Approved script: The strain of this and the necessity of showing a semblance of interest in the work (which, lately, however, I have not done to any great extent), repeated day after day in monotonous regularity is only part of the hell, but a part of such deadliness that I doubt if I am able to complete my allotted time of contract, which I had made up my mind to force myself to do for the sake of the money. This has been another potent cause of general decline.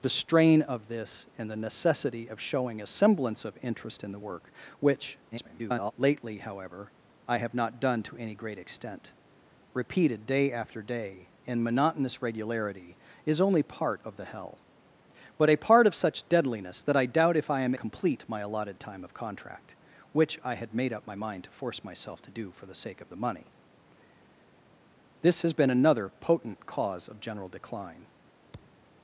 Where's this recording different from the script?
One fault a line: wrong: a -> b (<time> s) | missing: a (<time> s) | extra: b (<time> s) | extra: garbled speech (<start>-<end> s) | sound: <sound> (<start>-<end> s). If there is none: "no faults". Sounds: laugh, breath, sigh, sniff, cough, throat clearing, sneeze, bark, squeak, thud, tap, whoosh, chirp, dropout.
extra: garbled speech (5.3-5.9 s)
missing: able to (17.7 s)
sound: thud (28.5-28.9 s)